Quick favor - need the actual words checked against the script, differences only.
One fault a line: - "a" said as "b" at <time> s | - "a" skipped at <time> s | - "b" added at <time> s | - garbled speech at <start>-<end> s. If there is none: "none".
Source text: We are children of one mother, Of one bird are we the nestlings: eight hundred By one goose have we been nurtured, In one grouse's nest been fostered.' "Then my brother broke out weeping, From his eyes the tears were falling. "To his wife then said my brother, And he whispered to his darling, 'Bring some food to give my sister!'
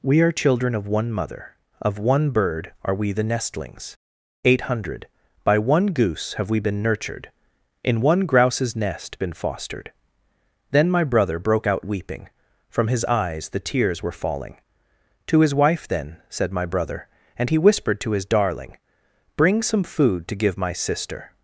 none